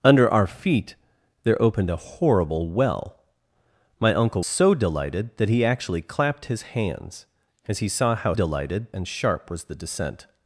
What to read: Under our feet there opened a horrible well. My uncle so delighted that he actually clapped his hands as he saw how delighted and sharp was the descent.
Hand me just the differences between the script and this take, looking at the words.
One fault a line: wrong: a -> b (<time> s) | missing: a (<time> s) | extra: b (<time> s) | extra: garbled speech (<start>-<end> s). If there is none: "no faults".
no faults